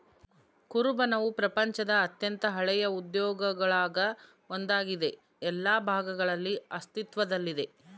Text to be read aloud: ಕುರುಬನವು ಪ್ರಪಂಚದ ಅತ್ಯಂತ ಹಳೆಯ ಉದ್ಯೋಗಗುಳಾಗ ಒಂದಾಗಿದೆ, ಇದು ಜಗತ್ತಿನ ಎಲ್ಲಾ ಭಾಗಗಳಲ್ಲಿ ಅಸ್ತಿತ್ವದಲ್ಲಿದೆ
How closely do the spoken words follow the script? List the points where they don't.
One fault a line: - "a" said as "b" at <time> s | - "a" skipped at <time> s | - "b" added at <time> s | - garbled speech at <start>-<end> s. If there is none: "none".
- "ಇದು ಜಗತ್ತಿನ" skipped at 5.1 s